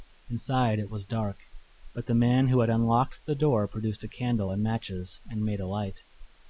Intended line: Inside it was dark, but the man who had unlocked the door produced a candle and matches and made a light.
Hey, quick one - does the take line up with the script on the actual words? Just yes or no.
yes